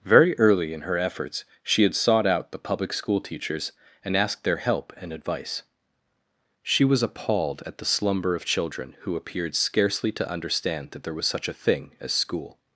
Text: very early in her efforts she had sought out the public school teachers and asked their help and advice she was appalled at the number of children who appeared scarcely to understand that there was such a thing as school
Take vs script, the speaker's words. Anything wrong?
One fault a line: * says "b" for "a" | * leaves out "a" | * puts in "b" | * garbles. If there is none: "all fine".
* says "slumber" for "number"